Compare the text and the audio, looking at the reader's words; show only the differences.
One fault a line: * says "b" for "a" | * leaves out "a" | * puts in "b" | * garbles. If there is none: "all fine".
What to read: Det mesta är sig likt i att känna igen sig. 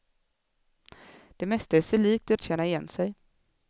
all fine